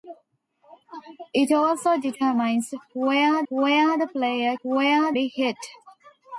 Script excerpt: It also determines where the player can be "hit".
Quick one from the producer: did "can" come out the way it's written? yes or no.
no